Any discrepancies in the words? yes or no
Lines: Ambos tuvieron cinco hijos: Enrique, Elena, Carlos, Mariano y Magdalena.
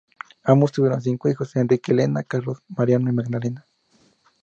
no